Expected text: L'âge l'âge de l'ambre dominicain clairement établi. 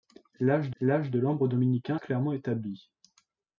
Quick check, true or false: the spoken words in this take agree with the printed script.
true